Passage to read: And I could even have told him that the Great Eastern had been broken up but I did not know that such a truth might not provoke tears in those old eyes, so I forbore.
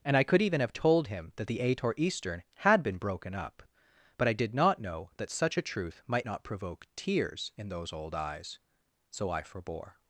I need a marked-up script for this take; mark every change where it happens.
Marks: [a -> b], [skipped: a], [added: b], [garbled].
And I could even have told him that the [Great -> Ator] Eastern had been broken up but I did not know that such a truth might not provoke tears in those old eyes, so I forbore.